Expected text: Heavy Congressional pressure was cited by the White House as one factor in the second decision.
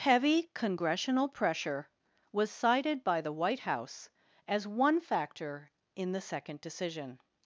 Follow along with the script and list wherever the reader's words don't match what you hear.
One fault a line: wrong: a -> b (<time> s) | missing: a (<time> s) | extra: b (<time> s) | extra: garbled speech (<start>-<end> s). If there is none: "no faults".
no faults